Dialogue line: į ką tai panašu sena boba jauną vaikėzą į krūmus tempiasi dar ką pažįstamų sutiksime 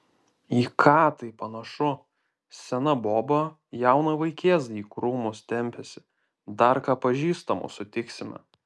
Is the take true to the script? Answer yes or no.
yes